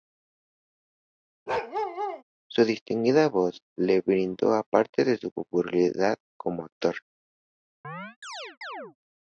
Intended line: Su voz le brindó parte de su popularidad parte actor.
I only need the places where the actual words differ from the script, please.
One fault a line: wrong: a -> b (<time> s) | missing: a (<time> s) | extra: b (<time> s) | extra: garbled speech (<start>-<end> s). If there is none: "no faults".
extra: distinguida (2.6 s)
wrong: parte -> como (6.4 s)